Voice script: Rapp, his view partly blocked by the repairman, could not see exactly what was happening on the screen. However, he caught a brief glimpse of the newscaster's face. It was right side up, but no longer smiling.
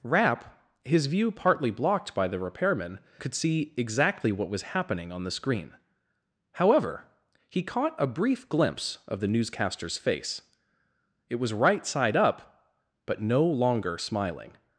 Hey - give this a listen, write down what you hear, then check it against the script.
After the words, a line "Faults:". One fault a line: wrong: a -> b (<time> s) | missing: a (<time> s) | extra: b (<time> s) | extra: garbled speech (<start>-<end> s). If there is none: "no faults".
Rapp, his view partly blocked by the repairman, could see exactly what was happening on the screen. However, he caught a brief glimpse of the newscaster's face. It was right side up, but no longer smiling.
Faults:
missing: not (3.3 s)